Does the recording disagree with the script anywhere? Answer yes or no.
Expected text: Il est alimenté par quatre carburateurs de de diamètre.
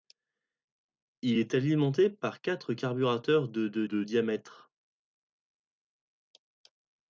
yes